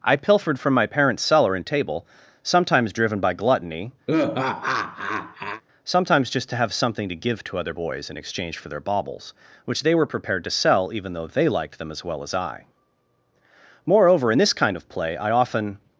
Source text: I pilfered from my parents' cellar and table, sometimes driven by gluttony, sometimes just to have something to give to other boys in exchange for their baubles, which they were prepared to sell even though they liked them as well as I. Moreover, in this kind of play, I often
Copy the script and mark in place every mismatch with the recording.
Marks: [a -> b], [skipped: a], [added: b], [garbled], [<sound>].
I pilfered from my parents' cellar and table, sometimes driven by gluttony, [laugh] sometimes just to have something to give to other boys in exchange for their baubles, which they were prepared to sell even though they liked them as well as I. Moreover, in this kind of play, I often